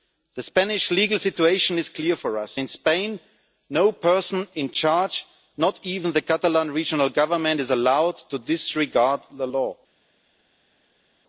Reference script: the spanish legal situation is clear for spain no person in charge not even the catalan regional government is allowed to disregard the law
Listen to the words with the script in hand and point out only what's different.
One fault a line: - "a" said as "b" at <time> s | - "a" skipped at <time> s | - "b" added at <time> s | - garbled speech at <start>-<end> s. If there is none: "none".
- "us in" added at 2.4 s